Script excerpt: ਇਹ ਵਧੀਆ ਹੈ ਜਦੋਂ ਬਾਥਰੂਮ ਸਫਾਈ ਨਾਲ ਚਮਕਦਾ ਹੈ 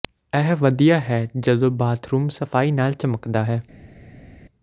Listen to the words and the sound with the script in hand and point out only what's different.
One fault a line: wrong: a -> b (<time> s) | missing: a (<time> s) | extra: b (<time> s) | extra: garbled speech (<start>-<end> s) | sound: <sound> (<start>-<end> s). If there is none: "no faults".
no faults